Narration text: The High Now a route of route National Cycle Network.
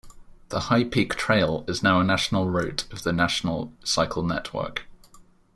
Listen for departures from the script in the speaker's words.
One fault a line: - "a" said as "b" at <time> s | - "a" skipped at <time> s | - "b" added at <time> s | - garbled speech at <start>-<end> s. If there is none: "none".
- "Peak Trail is" added at 0.8 s
- "national" added at 2.0 s
- "route" said as "the" at 3.0 s